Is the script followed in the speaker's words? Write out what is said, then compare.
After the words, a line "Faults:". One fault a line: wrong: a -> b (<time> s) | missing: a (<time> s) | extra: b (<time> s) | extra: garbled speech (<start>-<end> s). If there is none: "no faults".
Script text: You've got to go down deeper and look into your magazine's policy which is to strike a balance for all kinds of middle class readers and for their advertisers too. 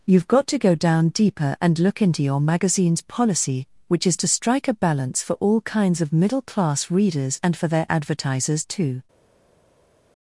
You've got to go down deeper and look into your magazine's policy which is to strike a balance for all kinds of middle class readers and for their advertisers too.
Faults:
no faults